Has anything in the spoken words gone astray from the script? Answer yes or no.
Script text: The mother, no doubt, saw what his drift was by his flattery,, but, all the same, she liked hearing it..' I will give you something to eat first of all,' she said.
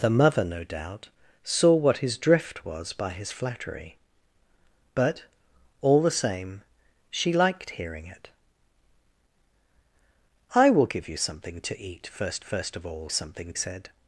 yes